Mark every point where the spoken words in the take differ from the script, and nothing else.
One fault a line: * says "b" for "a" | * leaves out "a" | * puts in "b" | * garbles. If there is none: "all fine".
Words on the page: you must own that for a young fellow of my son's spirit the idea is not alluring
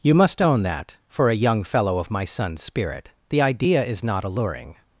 all fine